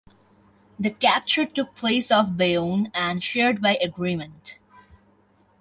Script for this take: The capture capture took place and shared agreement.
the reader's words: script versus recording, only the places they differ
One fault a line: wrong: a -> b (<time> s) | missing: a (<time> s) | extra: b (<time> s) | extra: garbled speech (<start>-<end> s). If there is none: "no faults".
missing: capture (1.4 s)
extra: off Bayonne (2.1 s)
extra: by (3.6 s)